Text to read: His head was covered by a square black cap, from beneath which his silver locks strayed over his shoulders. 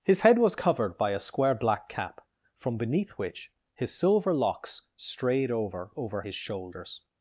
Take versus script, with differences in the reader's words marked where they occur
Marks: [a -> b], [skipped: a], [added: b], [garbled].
His head was covered by a square black cap, from beneath which his silver locks strayed over [added: over] his shoulders.